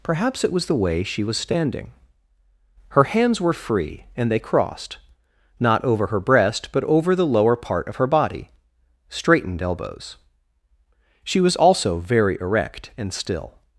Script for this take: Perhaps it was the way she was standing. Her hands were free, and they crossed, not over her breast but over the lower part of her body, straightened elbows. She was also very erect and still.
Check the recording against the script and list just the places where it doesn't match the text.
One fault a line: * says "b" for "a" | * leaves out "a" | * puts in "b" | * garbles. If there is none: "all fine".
all fine